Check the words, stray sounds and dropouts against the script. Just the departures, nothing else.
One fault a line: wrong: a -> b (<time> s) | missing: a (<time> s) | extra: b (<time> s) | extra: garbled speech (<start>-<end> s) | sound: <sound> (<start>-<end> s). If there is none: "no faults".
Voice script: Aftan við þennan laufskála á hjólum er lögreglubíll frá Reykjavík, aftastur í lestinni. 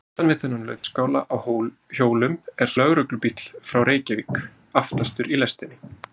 sound: dropout (0.8-0.8 s)